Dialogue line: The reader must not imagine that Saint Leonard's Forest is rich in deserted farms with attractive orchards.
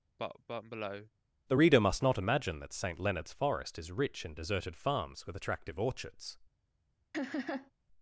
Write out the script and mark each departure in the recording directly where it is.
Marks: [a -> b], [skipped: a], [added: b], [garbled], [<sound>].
[cough] The reader must not imagine that Saint Leonard's Forest is rich in deserted farms with attractive orchards. [laugh]